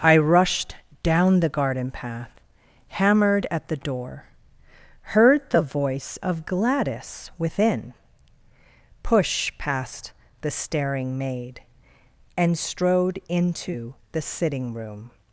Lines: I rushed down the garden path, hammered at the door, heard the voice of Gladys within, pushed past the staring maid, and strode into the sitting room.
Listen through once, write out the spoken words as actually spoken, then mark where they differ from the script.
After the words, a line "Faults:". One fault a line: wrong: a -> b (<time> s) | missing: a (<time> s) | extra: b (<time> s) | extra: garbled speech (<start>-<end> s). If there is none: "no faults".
I rushed down the garden path, hammered at the door, heard the voice of Gladys within, push past the staring maid, and strode into the sitting room.
Faults:
wrong: pushed -> push (9.0 s)